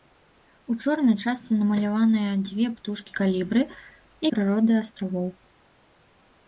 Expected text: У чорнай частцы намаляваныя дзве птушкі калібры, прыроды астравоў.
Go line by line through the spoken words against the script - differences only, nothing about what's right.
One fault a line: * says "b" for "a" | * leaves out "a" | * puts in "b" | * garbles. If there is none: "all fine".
all fine